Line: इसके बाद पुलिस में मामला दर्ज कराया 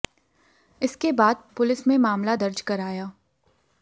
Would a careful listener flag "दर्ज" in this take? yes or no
no